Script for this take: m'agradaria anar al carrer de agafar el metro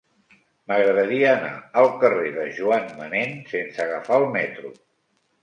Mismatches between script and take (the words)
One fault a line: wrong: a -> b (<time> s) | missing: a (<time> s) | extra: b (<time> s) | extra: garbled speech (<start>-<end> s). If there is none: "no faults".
extra: joan manén sense (2.6 s)